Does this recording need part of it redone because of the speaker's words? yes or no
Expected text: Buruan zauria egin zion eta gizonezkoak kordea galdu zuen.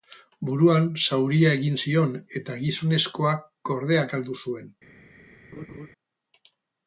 no